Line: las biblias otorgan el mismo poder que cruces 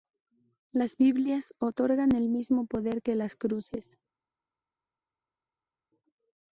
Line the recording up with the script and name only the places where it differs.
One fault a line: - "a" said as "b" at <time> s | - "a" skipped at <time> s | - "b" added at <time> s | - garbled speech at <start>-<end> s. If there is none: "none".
- "las" added at 3.1 s